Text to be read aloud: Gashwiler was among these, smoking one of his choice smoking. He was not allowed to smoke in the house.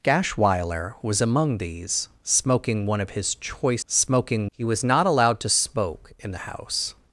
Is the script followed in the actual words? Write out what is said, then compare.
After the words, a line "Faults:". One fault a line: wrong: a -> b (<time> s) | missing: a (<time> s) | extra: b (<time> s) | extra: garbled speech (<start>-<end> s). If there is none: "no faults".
Gashwiler was among these, smoking one of his choice smoking. He was not allowed to smoke in the house.
Faults:
no faults